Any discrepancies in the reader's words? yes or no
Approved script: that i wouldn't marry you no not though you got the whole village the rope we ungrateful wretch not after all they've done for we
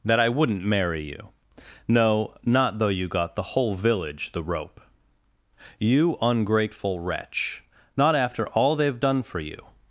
yes